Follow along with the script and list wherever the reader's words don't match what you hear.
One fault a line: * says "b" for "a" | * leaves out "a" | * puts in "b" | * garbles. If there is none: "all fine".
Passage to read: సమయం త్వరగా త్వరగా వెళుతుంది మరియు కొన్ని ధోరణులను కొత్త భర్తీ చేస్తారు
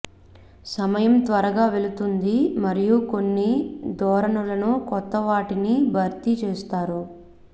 * leaves out "త్వరగా"
* puts in "వాటిని"